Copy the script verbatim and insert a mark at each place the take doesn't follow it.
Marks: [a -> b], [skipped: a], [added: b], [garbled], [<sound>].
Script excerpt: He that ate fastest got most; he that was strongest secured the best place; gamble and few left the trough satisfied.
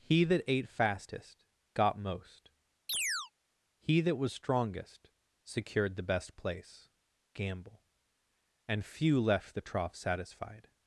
He that ate fastest got most; [chirp] he that was strongest secured the best place; gamble and few left the trough satisfied.